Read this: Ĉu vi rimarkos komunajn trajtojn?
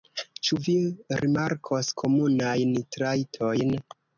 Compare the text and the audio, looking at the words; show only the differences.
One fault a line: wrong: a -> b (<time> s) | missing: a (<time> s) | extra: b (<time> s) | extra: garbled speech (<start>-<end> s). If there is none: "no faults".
no faults